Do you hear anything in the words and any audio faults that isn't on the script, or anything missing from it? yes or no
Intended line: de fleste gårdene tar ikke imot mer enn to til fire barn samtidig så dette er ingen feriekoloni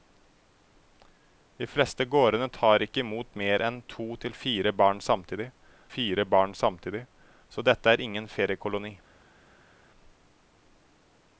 yes